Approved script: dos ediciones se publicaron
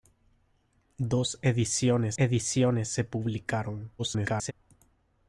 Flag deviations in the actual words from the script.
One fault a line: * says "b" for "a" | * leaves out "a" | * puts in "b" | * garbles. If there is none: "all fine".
* puts in "ediciones"
* garbles